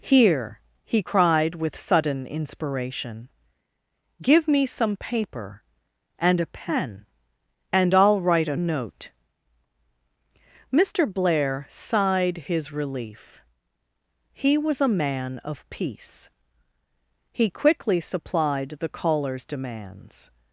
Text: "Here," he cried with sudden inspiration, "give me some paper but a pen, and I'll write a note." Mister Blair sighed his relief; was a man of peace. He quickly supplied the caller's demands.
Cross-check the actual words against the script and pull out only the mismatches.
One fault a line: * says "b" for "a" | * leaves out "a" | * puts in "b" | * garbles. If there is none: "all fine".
* says "and" for "but"
* puts in "he"